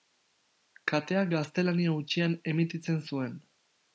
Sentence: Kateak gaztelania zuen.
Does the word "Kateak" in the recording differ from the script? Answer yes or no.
no